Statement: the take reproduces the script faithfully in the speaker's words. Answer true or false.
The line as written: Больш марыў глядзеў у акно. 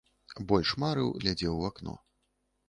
true